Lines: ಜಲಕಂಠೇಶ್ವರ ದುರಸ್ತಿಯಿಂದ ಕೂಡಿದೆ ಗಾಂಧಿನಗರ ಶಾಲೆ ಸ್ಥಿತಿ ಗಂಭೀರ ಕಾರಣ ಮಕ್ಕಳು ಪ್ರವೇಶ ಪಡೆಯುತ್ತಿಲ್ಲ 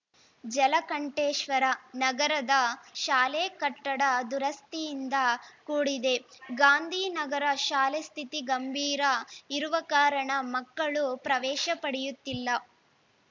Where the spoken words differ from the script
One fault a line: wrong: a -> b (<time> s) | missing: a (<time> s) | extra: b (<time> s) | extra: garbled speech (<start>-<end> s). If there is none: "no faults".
extra: ನಗರದ ಶಾಲೆ ಕಟ್ಟಡ (1.9 s)
extra: ಇರುವ (9.5 s)